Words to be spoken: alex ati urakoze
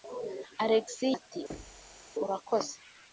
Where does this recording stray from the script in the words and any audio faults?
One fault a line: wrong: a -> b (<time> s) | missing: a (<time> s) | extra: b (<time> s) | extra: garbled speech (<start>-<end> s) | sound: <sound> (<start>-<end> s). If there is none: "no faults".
sound: thud (1.5-2.1 s)